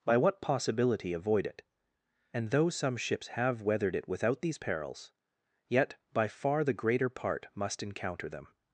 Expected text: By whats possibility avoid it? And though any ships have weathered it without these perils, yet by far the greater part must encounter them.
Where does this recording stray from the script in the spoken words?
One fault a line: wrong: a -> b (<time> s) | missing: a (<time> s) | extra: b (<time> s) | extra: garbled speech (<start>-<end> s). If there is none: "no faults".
wrong: whats -> what (0.2 s)
wrong: any -> some (2.7 s)